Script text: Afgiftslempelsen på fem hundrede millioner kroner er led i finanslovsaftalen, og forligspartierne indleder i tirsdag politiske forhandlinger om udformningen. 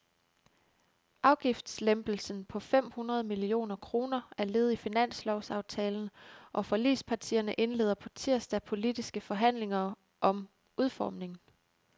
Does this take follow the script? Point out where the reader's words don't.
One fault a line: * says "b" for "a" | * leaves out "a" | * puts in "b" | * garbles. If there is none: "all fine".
* says "på" for "i"